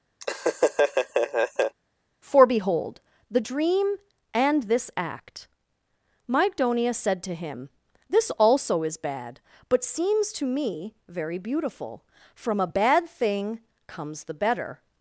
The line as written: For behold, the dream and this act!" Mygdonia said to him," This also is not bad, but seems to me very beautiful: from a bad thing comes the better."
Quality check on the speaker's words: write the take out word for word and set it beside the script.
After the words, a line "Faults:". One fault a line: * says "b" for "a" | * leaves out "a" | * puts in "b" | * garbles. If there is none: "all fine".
For behold, the dream and this act!" Mygdonia said to him," This also is bad, but seems to me very beautiful: from a bad thing comes the better."
Faults:
* leaves out "not"